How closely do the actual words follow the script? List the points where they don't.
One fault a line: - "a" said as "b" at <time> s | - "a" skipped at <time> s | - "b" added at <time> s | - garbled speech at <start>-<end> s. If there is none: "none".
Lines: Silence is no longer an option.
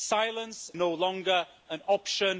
- "is" skipped at 0.7 s